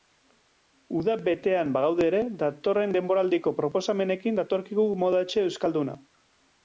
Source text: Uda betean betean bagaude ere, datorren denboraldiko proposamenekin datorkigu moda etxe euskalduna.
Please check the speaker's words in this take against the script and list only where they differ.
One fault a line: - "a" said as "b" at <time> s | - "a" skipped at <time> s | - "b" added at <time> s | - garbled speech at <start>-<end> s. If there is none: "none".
- "betean" skipped at 1.8 s